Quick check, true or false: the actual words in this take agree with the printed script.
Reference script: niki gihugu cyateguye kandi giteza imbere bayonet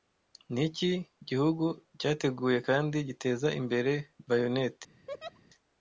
true